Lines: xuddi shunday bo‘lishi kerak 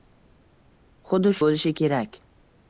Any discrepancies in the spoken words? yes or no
yes